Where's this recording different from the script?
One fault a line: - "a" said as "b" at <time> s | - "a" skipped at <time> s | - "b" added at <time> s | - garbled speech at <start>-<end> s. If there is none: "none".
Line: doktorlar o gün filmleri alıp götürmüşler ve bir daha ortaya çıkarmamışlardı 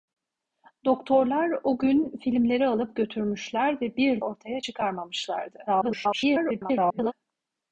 - "daha" skipped at 4.2 s
- garbled speech at 5.7-7.1 s